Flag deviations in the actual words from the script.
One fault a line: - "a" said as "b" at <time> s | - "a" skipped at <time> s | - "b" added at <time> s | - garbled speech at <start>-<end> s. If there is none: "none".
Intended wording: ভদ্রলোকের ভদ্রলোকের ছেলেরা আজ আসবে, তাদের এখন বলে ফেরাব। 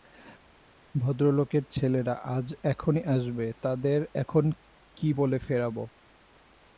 - "ভদ্রলোকের" skipped at 1.6 s
- "এখনই" added at 2.6 s
- "কী" added at 5.0 s